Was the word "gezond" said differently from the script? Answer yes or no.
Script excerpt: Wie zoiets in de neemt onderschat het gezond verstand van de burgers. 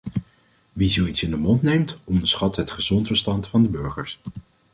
no